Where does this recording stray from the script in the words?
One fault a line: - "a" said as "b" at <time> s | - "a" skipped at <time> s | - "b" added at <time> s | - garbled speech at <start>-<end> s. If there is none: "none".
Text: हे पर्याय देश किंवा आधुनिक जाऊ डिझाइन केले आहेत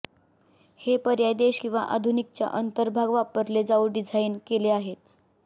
- "च्या अंतर्भाग वापरले" added at 2.3 s